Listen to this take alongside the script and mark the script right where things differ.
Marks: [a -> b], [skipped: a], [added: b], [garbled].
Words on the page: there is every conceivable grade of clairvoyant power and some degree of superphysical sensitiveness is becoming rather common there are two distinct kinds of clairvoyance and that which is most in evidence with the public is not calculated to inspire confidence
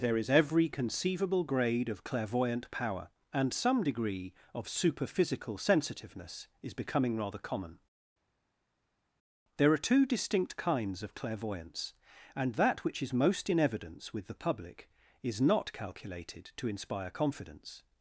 there is every conceivable grade of clairvoyant power and some degree of superphysical sensitiveness is becoming rather common there are two distinct kinds of clairvoyance and that which is most in evidence with the public is not calculated to inspire confidence